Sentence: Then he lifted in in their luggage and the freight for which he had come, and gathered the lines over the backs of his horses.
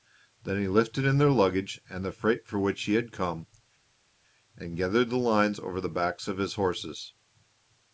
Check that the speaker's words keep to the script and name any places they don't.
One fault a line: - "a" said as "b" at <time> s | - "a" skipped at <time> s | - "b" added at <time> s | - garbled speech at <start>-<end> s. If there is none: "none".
- "in" skipped at 1.2 s